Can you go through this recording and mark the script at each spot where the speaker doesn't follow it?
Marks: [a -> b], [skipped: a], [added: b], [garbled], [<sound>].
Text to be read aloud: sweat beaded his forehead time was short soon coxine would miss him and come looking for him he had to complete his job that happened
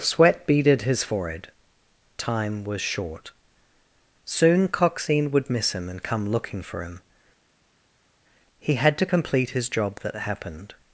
sweat beaded his forehead time was short soon coxine would miss him and come looking for him he had to complete his job that happened